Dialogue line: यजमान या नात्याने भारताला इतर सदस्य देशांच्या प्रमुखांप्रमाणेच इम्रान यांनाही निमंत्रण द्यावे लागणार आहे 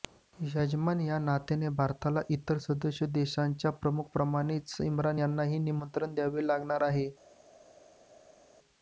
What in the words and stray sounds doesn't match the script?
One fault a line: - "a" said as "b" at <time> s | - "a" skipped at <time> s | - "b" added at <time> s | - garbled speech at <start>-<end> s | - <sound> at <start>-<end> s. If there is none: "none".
none